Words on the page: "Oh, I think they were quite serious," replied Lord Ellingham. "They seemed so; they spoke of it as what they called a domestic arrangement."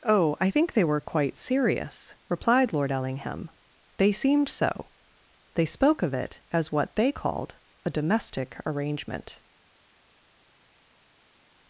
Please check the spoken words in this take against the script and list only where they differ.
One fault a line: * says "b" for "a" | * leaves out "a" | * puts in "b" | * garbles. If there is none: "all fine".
all fine